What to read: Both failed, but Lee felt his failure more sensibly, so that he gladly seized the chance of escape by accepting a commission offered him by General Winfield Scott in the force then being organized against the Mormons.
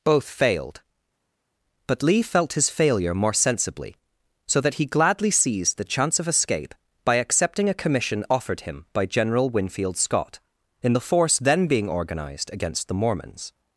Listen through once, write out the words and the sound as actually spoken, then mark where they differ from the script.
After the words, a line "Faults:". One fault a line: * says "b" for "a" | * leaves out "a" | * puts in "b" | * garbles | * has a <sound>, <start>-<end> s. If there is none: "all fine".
Both failed, but Lee felt his failure more sensibly, so that he gladly seized the chance of escape by accepting a commission offered him by General Winfield Scott in the force then being organized against the Mormons.
Faults:
all fine